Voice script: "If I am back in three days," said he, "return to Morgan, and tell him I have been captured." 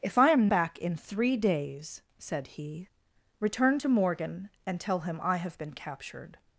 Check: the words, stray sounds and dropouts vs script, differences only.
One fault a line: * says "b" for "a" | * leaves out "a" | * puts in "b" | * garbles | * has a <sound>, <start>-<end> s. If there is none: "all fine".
all fine